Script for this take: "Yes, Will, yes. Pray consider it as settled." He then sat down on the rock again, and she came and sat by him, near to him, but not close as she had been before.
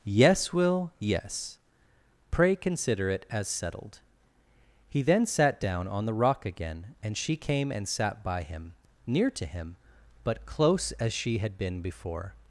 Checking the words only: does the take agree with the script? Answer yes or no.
no